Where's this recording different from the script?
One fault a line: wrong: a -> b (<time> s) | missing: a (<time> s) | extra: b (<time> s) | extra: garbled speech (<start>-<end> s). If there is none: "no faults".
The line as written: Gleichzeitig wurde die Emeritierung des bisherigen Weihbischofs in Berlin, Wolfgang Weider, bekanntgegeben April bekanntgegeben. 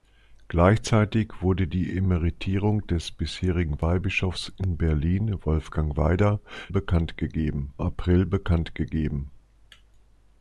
no faults